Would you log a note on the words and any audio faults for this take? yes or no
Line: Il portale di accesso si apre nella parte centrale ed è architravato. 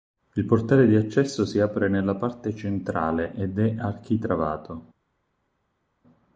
no